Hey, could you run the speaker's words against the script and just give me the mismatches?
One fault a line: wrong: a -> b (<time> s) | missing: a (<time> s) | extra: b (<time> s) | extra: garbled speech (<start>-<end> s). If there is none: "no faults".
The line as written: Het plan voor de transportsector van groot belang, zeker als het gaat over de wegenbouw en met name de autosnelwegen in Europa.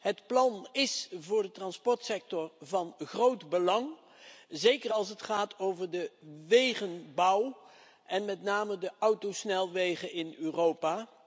extra: is (0.7 s)